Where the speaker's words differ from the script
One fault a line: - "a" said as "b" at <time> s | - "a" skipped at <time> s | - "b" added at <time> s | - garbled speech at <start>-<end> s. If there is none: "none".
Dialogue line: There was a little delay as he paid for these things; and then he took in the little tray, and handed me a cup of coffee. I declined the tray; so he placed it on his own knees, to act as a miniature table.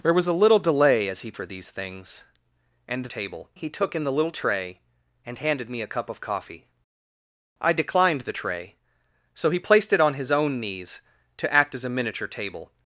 - "paid" skipped at 1.3 s
- "then" said as "table" at 3.1 s